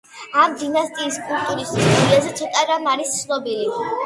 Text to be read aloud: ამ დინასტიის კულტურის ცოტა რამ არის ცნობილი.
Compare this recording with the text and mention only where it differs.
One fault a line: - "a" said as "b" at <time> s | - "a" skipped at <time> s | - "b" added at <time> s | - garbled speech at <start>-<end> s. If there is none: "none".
- "ისტორიაზე" added at 1.8 s